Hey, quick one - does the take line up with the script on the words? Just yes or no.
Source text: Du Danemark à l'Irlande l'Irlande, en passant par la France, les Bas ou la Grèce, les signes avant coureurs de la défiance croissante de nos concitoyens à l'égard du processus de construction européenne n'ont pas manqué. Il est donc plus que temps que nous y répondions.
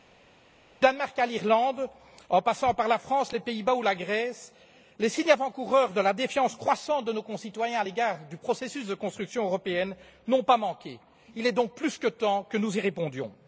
no